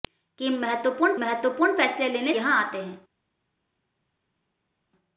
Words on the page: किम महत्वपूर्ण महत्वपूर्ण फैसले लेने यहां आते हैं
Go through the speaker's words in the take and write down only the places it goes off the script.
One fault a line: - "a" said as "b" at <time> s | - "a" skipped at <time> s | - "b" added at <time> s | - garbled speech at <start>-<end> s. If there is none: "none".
none